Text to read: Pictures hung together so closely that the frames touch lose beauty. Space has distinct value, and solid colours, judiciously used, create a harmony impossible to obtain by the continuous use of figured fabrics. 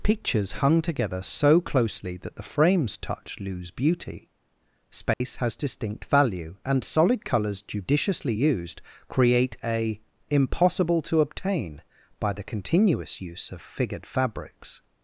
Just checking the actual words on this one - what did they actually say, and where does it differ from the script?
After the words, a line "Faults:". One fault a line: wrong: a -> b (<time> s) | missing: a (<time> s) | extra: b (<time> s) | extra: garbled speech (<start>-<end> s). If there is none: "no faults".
Pictures hung together so closely that the frames touch lose beauty. Space has distinct value, and solid colours, judiciously used, create a impossible to obtain by the continuous use of figured fabrics.
Faults:
missing: harmony (10.0 s)